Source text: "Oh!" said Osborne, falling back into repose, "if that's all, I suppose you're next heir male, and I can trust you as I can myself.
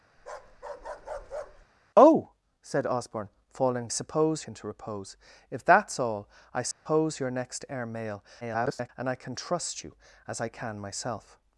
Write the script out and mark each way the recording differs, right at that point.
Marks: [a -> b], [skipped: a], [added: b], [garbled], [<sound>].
[bark] "Oh!" said Osborne, falling [back -> suppose] into repose, "if that's all, I suppose [dropout] you're next heir male, [garbled] and I can trust you as I can myself.